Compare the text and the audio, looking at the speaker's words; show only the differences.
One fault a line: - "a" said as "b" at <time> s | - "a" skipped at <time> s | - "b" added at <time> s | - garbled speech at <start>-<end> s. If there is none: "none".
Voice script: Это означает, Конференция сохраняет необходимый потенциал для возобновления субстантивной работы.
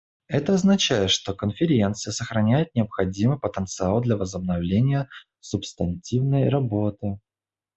- "что" added at 1.1 s